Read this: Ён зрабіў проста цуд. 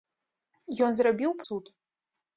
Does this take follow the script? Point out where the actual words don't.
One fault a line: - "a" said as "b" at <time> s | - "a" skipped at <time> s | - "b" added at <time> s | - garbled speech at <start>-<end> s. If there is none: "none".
- "проста" skipped at 1.4 s